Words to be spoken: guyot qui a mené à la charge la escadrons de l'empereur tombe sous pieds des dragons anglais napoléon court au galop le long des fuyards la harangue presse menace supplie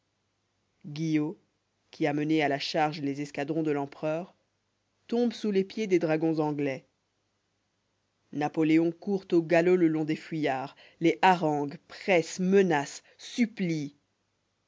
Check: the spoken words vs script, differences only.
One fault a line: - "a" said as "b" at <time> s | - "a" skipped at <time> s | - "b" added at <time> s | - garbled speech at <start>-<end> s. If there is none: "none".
- "la" said as "les" at 3.0 s
- "les" added at 5.5 s
- "la" said as "les" at 11.0 s